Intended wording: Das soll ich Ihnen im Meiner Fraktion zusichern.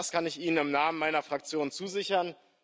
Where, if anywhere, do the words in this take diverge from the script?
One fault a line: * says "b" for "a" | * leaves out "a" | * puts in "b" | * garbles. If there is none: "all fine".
* says "kann" for "soll"
* puts in "Namen"